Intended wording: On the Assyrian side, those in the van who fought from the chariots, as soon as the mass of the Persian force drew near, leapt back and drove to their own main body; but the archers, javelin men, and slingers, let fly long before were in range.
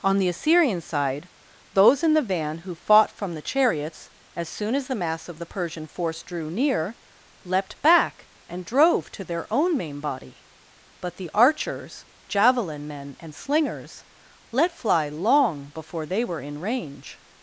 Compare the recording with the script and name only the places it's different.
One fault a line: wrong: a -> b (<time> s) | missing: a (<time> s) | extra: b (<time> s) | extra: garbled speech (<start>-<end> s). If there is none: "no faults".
extra: they (16.1 s)